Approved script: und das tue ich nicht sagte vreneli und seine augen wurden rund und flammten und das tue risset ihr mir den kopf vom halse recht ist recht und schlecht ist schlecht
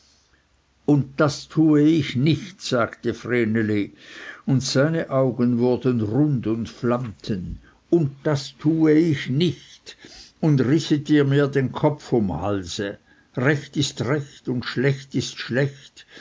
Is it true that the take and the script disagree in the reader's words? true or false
true